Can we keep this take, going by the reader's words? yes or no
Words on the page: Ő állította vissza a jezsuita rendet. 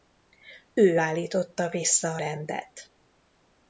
no